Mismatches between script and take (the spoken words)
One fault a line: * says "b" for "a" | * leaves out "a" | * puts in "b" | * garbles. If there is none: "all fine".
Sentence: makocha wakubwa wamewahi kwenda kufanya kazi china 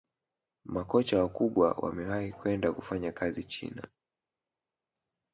all fine